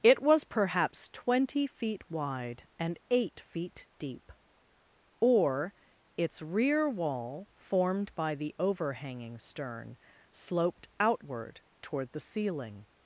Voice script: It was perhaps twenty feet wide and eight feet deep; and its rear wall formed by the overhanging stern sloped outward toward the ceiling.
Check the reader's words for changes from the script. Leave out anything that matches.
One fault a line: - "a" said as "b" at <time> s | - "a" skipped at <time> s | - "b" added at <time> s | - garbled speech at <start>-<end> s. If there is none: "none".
- "and" said as "or" at 5.2 s